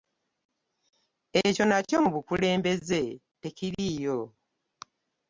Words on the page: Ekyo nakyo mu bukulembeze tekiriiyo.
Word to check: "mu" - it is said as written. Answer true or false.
true